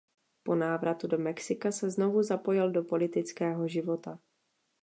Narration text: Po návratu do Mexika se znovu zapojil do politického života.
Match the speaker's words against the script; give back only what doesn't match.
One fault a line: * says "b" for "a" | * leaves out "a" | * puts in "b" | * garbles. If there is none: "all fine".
all fine